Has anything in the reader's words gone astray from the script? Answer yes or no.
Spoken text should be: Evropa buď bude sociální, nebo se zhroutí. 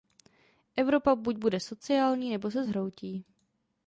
no